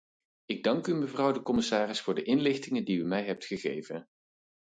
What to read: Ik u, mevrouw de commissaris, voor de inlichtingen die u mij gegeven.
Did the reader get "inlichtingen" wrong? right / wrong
right